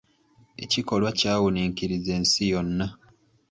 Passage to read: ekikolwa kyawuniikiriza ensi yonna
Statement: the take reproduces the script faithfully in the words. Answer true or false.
true